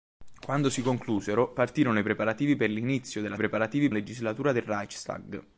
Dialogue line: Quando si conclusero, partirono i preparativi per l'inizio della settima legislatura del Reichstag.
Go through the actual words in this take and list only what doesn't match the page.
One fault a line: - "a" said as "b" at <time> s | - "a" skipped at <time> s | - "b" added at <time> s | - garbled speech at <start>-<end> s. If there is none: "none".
- "settima" said as "preparativi" at 3.4 s